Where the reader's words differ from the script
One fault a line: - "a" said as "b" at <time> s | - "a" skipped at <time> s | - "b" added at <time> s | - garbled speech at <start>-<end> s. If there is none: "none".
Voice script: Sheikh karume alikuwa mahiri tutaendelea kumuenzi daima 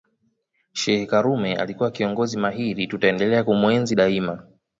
- "kiongozi" added at 1.9 s